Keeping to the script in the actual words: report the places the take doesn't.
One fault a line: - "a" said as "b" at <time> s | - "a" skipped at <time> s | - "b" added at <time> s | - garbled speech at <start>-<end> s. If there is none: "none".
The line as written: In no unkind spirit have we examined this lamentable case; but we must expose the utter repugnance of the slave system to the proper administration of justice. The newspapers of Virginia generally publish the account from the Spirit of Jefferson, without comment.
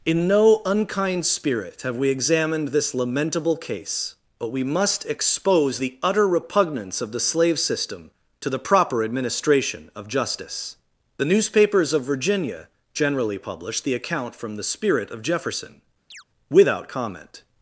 none